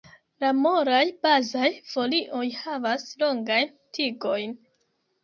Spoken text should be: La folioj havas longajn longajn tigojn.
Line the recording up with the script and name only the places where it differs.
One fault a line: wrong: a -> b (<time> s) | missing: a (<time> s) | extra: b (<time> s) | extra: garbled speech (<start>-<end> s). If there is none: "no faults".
extra: molaj bazaj (0.6 s)
missing: longajn (3.7 s)